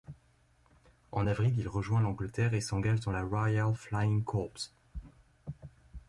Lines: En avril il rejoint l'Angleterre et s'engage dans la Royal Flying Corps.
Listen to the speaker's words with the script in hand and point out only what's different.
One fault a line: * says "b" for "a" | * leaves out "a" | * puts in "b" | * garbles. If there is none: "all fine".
all fine